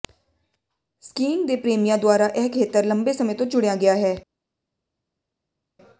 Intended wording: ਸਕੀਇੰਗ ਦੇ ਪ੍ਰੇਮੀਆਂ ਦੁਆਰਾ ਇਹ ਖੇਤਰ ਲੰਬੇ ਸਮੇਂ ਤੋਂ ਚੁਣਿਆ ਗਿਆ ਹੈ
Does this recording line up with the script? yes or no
yes